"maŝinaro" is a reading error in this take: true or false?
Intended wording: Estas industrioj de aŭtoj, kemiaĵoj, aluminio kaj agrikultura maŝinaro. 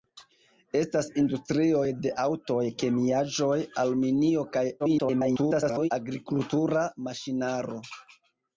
false